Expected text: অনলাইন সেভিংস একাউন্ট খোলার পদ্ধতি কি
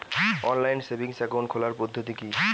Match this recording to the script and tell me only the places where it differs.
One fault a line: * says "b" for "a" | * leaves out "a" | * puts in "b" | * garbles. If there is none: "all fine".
all fine